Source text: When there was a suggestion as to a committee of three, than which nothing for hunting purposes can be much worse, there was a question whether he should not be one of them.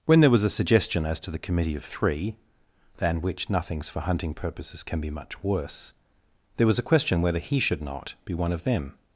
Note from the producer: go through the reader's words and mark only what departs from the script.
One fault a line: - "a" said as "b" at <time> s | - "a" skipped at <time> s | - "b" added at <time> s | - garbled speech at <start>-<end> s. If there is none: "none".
- "a" said as "the" at 1.3 s
- "nothing" said as "nothings" at 3.5 s